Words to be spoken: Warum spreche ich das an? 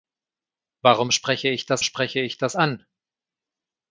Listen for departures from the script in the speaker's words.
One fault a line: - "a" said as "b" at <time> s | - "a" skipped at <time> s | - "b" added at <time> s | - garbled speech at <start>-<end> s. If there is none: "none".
- "spreche ich das" added at 1.8 s